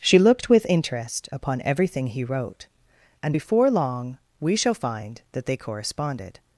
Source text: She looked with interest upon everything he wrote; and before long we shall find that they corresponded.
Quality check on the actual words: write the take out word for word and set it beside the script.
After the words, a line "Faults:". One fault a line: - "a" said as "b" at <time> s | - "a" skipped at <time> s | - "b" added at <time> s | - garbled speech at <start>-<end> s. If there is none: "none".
She looked with interest upon everything he wrote; and before long we shall find that they corresponded.
Faults:
none